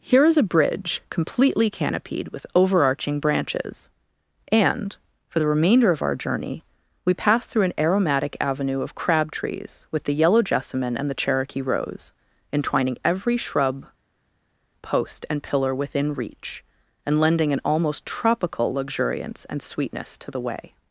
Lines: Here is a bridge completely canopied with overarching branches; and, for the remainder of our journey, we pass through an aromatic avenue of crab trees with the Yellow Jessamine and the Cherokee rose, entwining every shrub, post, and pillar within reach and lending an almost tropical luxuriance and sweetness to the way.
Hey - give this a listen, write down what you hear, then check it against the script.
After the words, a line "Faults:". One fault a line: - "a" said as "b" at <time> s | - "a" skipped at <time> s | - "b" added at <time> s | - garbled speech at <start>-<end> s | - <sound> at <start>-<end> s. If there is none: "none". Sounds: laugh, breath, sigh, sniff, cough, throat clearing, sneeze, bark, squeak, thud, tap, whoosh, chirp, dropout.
Here is a bridge completely canopied with overarching branches; and, for the remainder of our journey, we pass through an aromatic avenue of crab trees with the Yellow Jessamine and the Cherokee rose, entwining every shrub, post, and pillar within reach and lending an almost tropical luxuriance and sweetness to the way.
Faults:
none